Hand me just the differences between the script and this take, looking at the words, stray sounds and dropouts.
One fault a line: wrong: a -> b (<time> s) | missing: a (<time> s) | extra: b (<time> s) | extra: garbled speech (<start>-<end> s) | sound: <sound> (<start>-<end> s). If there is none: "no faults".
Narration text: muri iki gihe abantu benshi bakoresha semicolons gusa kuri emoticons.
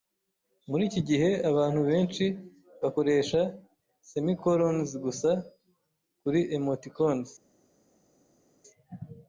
no faults